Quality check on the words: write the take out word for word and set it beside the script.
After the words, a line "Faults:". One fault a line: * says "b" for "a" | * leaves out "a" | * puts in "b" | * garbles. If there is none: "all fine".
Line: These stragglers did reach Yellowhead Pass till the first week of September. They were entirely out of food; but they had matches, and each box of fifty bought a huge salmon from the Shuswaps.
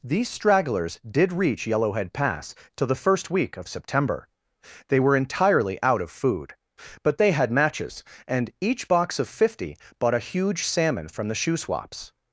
These stragglers did reach Yellowhead Pass till the first week of September. They were entirely out of food; but they had matches, and each box of fifty bought a huge salmon from the Shuswaps.
Faults:
all fine